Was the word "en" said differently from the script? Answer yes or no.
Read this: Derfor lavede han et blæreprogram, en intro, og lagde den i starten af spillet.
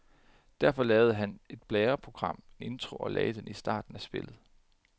yes